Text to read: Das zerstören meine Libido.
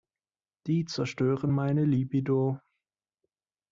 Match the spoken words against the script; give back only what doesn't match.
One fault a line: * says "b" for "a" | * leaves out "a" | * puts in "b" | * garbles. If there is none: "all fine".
* says "Die" for "Das"